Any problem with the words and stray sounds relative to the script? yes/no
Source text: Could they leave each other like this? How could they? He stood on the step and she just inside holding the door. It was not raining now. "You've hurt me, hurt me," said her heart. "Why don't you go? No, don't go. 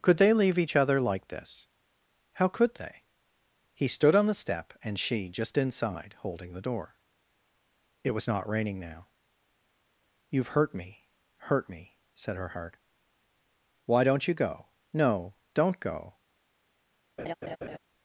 yes